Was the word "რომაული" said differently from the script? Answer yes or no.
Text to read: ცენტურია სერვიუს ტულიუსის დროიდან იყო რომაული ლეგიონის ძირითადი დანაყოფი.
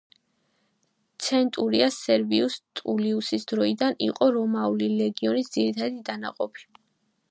no